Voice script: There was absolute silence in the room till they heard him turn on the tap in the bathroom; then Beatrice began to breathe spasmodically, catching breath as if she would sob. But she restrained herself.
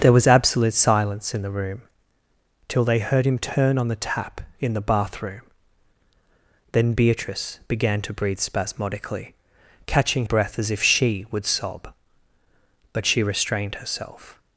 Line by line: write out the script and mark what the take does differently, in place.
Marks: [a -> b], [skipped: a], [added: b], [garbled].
There was absolute silence in the room till they heard him turn on the tap in the bathroom; then Beatrice began to breathe spasmodically, catching breath as if she would sob. But she restrained herself.